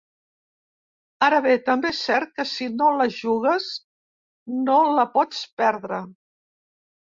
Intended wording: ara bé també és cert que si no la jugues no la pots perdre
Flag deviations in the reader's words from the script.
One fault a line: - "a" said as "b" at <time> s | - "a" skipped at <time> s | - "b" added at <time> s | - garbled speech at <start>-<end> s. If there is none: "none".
none